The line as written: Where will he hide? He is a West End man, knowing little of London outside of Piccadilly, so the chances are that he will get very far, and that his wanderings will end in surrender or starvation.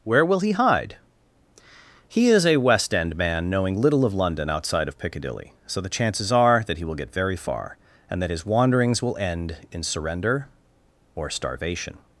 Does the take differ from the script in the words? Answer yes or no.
no